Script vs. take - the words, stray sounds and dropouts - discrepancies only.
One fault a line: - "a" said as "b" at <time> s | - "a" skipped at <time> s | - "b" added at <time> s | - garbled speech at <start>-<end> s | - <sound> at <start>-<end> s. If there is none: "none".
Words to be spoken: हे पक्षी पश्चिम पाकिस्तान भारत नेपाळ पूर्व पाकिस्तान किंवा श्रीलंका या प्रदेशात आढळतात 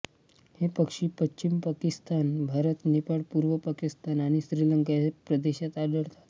- "किंवा" said as "आणि" at 4.2 s